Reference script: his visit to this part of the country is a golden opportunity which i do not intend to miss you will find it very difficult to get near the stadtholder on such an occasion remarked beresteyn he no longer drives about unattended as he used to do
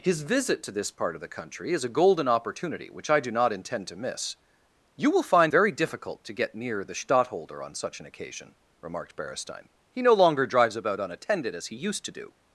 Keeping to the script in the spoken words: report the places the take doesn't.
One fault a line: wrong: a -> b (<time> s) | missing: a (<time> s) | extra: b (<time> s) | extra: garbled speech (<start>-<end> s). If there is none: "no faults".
missing: it (5.5 s)